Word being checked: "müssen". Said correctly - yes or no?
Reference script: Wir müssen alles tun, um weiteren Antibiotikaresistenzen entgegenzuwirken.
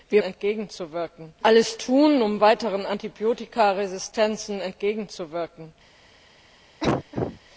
no